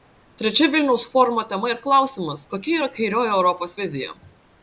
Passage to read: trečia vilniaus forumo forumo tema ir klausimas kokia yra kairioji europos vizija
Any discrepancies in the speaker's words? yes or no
yes